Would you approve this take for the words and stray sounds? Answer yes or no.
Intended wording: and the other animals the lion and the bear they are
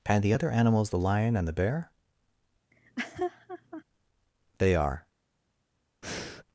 no